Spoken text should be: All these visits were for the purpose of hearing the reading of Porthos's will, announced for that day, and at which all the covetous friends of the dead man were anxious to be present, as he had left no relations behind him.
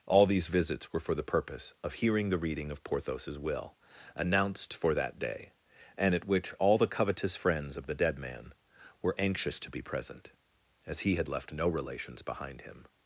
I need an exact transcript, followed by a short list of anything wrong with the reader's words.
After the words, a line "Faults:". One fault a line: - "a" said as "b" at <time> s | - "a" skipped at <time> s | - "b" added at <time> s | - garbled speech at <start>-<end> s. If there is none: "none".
All these visits were for the purpose of hearing the reading of Porthos's will, announced for that day, and at which all the covetous friends of the dead man were anxious to be present, as he had left no relations behind him.
Faults:
none